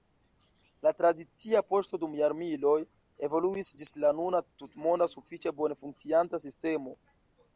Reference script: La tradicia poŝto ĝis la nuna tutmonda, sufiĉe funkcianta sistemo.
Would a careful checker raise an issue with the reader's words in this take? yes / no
yes